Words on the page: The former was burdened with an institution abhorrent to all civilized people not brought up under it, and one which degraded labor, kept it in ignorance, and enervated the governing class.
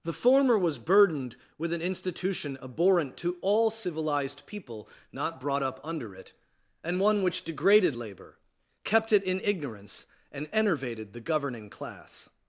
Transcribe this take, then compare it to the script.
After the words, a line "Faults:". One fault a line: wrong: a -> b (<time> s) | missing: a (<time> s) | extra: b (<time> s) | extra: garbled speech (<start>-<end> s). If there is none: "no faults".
The former was burdened with an institution abhorrent to all civilized people not brought up under it, and one which degraded labor, kept it in ignorance, and enervated the governing class.
Faults:
no faults